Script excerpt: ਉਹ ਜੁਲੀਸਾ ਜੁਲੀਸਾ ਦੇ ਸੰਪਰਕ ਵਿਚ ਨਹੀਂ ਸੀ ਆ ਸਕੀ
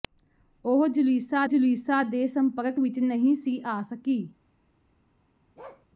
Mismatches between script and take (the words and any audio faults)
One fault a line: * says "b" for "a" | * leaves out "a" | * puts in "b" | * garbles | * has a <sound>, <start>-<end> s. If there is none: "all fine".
* has a bark, 5.6-5.9 s